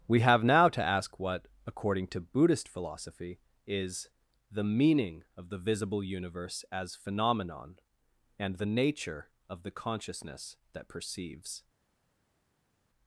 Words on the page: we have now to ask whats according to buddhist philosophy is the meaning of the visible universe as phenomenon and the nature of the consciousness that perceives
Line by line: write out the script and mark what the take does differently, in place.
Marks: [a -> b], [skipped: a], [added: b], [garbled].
we have now to ask [whats -> what] according to buddhist philosophy is the meaning of the visible universe as phenomenon and the nature of the consciousness that perceives